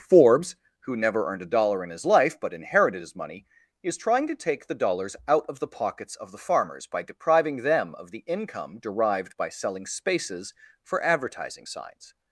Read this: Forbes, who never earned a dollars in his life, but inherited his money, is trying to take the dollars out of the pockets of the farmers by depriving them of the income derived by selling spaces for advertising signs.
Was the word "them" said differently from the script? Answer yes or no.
no